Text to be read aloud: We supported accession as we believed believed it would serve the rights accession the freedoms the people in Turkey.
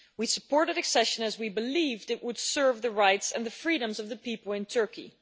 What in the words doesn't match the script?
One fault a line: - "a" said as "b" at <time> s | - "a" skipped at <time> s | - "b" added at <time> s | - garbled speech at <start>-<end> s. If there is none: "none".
- "believed" skipped at 2.1 s
- "accession" said as "and" at 3.3 s
- "of" added at 4.0 s